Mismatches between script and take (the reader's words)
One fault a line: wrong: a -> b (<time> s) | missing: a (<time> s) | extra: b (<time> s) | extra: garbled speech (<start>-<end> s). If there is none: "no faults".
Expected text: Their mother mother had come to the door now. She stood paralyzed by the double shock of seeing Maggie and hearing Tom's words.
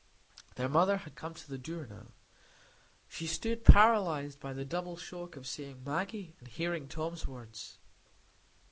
missing: mother (1.0 s)